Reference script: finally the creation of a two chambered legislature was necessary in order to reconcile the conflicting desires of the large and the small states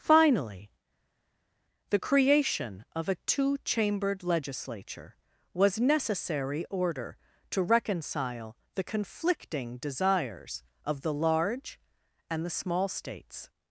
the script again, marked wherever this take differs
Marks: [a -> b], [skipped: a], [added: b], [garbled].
finally the creation of a two chambered legislature was necessary [skipped: in] order to reconcile the conflicting desires of the large and the small states